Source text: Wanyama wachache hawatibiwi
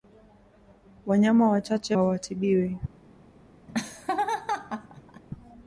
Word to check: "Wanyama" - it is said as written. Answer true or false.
true